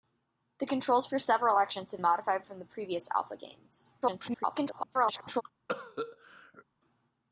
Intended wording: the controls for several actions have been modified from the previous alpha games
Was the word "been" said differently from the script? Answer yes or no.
yes